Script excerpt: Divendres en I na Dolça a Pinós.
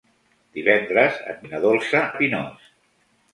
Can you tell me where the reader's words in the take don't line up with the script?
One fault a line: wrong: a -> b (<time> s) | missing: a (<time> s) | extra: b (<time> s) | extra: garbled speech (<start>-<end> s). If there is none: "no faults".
no faults